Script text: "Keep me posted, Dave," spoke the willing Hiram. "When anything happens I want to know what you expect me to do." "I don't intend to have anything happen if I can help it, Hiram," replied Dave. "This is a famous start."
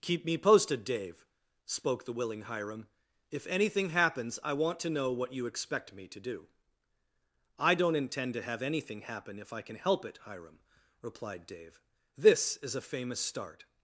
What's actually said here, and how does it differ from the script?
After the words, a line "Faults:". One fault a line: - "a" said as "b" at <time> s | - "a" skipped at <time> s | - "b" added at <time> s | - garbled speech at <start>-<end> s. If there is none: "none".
"Keep me posted, Dave," spoke the willing Hiram. "If anything happens I want to know what you expect me to do." "I don't intend to have anything happen if I can help it, Hiram," replied Dave. "This is a famous start."
Faults:
- "When" said as "If" at 3.3 s